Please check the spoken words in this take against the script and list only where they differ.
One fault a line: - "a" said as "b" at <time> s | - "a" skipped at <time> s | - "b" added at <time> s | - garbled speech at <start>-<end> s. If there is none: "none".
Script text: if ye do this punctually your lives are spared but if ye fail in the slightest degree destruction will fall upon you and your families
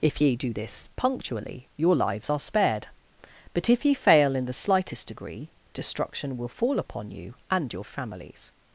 none